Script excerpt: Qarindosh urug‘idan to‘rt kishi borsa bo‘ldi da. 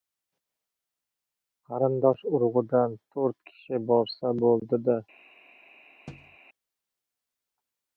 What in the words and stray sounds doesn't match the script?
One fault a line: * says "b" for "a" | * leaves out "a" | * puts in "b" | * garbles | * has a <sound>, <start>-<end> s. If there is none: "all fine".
* has a thud, 6.1-6.4 s